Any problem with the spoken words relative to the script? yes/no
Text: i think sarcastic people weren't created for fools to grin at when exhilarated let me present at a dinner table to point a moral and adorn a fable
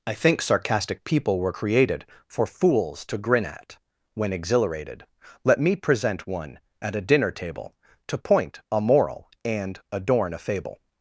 yes